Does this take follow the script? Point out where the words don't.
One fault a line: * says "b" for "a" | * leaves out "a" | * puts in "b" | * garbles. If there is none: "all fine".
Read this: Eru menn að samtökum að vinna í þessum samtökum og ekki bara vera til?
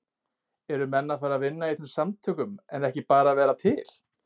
* says "fara" for "samtökum"
* says "en" for "og"